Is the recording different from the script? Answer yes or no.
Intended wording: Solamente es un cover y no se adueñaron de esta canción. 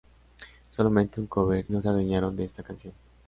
yes